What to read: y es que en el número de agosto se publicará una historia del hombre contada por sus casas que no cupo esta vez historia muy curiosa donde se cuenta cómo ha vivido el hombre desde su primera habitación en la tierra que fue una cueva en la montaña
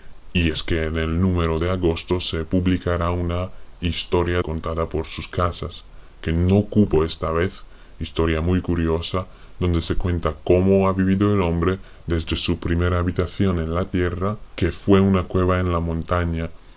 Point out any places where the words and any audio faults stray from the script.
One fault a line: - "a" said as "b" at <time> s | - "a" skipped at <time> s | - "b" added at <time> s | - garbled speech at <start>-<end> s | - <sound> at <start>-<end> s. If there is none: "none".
- "del hombre" skipped at 4.4 s